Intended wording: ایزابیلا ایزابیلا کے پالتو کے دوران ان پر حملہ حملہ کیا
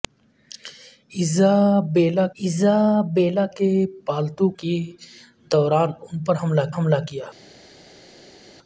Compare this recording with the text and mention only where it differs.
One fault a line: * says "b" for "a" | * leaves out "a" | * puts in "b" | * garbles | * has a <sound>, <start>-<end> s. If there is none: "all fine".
all fine